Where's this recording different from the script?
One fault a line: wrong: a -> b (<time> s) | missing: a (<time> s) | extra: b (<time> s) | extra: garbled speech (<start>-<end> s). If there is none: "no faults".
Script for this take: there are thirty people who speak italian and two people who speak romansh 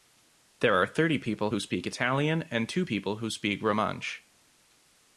no faults